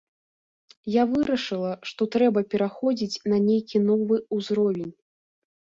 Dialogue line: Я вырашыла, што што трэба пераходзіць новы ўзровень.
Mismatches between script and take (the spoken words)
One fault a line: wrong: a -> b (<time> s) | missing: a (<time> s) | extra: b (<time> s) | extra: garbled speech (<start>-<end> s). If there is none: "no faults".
missing: што (2.1 s)
extra: на нейкі (3.3 s)